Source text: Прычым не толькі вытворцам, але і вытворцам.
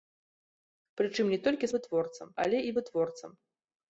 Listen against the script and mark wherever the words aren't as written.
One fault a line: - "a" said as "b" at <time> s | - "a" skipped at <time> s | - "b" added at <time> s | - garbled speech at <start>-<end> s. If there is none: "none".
none